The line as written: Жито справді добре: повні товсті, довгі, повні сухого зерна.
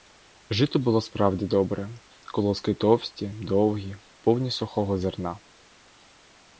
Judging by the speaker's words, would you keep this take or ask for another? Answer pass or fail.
fail